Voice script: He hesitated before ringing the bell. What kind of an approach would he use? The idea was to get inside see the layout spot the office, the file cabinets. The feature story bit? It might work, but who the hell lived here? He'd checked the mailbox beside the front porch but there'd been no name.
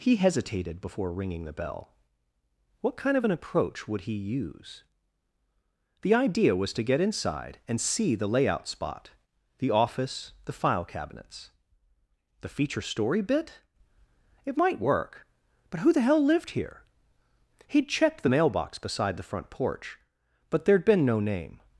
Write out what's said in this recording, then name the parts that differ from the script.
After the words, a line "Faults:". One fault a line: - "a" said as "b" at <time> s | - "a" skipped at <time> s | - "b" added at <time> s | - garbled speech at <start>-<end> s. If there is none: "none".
He hesitated before ringing the bell. What kind of an approach would he use? The idea was to get inside and see the layout spot the office, the file cabinets. The feature story bit? It might work, but who the hell lived here? He'd checked the mailbox beside the front porch but there'd been no name.
Faults:
- "and" added at 7.7 s